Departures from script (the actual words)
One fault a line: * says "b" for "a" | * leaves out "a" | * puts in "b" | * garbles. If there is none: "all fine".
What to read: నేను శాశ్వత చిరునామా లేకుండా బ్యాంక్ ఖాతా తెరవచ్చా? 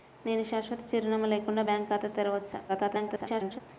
* garbles